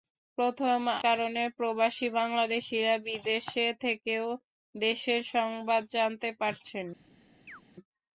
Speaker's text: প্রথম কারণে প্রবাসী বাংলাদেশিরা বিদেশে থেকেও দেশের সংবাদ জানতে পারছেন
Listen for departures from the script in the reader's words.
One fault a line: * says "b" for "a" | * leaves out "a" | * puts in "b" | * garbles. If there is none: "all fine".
all fine